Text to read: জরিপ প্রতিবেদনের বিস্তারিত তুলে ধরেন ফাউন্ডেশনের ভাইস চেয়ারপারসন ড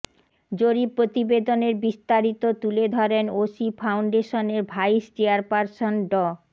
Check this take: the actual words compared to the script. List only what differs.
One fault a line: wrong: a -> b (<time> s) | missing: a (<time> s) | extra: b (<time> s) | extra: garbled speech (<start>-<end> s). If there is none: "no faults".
extra: ওশি (3.4 s)